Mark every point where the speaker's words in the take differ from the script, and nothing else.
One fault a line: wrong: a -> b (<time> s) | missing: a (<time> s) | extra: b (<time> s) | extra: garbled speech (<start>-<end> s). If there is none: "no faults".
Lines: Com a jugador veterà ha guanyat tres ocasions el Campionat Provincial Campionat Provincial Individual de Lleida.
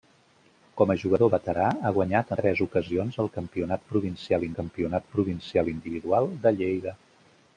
no faults